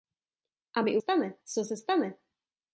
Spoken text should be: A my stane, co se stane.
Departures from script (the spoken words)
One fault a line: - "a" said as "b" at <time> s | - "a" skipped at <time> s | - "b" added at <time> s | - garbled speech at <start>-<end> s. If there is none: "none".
none